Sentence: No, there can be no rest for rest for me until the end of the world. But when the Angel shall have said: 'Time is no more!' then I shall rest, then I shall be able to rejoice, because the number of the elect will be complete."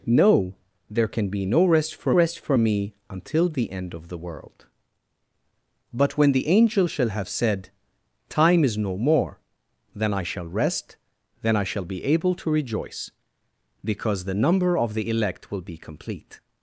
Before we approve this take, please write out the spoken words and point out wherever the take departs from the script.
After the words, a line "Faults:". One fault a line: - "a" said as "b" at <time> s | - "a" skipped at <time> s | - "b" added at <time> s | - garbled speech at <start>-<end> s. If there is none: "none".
No, there can be no rest for rest for me until the end of the world. But when the Angel shall have said: 'Time is no more!' then I shall rest, then I shall be able to rejoice, because the number of the elect will be complete."
Faults:
none